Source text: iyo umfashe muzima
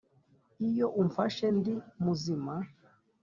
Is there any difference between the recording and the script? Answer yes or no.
yes